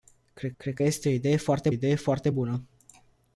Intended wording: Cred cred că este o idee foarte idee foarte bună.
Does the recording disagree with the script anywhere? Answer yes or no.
no